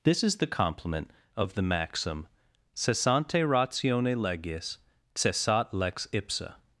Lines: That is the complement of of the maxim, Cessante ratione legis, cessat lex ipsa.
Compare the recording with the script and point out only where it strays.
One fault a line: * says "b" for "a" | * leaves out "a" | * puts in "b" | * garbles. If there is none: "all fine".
* says "This" for "That"
* leaves out "of"